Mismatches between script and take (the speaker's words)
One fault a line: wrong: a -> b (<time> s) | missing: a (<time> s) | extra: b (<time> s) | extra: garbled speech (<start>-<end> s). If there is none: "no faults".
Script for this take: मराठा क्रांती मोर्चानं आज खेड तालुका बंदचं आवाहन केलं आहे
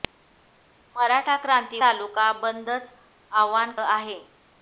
missing: मोर्चानं आज खेड (1.8 s)
missing: केलं (3.7 s)